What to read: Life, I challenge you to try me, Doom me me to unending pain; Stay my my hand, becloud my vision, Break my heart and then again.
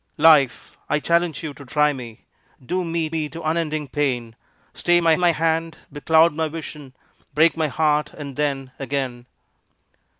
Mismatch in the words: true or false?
false